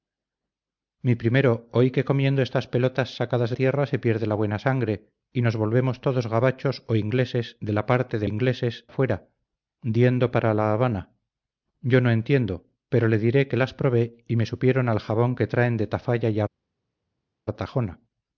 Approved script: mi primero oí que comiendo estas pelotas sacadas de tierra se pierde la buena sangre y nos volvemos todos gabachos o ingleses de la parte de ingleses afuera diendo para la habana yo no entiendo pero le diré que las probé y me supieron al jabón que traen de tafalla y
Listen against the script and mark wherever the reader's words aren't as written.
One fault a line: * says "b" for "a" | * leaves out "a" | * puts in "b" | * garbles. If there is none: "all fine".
all fine